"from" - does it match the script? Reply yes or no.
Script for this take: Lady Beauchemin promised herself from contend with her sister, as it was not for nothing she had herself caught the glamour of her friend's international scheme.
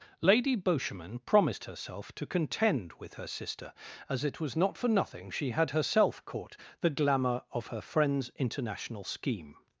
no